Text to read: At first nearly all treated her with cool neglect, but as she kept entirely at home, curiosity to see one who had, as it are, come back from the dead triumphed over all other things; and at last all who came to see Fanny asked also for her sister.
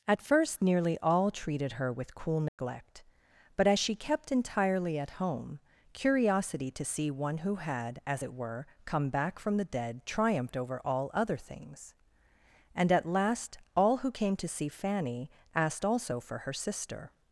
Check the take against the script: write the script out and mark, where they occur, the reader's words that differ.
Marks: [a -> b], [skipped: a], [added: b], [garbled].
At first nearly all treated her with cool neglect, but as she kept entirely at home, curiosity to see one who had, as it [are, -> were] come back from the dead triumphed over all other things; and at last all who came to see Fanny asked also for her sister.